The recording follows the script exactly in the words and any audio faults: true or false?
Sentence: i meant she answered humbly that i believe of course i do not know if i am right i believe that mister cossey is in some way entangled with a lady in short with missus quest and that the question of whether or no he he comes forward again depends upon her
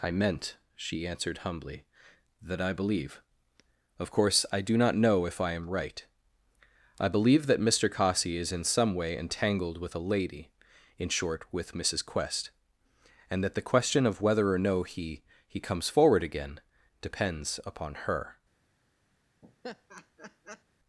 false